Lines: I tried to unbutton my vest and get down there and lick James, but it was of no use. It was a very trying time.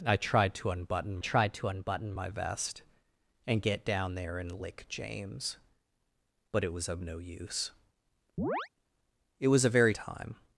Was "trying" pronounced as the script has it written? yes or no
no